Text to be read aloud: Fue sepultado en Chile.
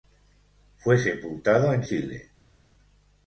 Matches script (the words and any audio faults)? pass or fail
pass